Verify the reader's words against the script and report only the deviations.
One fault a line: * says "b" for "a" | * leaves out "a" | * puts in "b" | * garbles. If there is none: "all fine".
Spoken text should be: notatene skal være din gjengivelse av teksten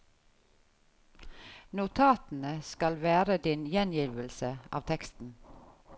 all fine